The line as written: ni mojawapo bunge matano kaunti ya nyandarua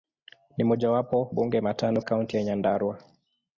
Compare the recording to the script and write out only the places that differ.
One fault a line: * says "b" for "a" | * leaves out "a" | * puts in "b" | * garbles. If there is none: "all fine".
all fine